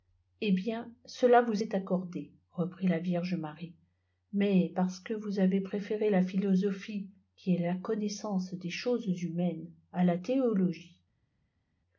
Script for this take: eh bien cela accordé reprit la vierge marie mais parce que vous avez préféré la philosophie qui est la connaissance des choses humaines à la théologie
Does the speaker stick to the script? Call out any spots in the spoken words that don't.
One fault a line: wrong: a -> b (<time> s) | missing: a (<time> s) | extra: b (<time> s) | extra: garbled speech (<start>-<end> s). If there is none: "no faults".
extra: vous est (1.4 s)